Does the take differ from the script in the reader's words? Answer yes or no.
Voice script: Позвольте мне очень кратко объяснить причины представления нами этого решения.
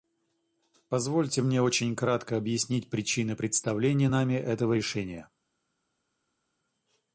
no